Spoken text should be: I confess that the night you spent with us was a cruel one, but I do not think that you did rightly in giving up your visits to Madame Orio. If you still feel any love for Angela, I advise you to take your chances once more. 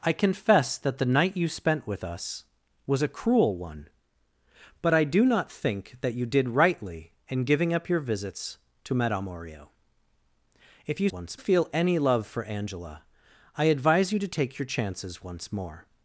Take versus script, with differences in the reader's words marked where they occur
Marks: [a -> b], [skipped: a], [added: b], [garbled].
I confess that the night you spent with us was a cruel one, but I do not think that you did rightly in giving up your visits to Madame Orio. If you [still -> once] feel any love for Angela, I advise you to take your chances once more.